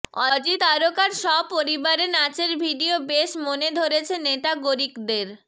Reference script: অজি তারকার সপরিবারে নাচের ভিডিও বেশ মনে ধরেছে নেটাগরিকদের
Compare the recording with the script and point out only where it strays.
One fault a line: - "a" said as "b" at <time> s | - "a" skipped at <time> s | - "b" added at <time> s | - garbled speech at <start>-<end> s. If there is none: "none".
none